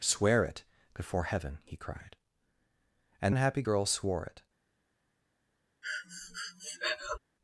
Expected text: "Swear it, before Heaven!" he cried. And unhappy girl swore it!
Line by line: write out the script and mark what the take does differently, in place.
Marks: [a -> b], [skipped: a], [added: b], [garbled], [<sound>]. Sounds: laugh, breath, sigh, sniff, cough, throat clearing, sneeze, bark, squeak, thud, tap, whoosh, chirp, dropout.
"Swear it, before Heaven!" he cried. And unhappy girl swore it! [breath]